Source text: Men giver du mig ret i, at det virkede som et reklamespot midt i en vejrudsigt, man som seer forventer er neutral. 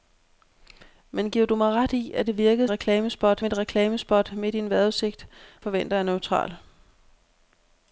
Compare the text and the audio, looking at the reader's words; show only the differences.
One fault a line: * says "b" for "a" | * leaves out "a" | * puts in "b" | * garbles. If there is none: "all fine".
* says "reklamespot" for "som"
* leaves out "man som seer"